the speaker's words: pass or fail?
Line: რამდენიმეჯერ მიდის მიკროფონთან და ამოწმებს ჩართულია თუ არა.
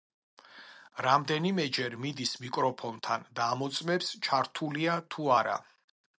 pass